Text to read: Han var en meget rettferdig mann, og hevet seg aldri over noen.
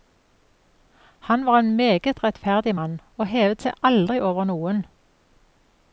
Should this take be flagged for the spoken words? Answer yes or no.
no